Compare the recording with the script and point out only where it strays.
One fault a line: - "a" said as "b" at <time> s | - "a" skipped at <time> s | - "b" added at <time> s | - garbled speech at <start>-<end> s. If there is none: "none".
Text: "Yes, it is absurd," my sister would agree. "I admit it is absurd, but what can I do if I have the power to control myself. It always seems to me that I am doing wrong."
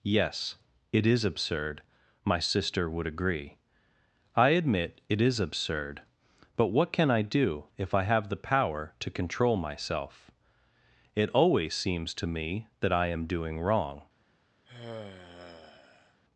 none